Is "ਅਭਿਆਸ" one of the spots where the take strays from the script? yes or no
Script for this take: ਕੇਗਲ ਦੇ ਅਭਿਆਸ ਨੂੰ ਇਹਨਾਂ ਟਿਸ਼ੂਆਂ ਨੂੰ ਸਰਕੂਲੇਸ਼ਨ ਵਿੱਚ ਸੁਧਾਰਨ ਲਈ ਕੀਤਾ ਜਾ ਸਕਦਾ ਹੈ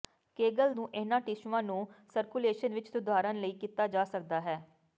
yes